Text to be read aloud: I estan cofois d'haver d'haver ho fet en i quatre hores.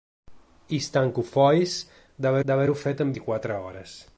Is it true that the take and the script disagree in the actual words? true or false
false